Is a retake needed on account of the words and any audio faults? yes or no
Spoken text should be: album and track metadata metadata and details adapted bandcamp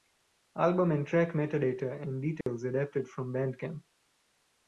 yes